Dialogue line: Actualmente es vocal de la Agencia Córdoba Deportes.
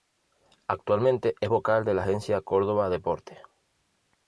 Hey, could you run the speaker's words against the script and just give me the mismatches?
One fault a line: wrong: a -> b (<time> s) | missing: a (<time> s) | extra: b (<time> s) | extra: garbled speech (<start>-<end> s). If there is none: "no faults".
no faults